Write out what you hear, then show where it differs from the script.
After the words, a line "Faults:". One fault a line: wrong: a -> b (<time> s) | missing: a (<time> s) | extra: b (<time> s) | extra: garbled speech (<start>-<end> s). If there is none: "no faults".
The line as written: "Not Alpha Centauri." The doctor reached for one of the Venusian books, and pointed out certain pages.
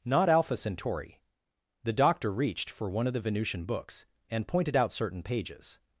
"Not Alpha Centauri." The doctor reached for one of the Venusian books, and pointed out certain pages.
Faults:
no faults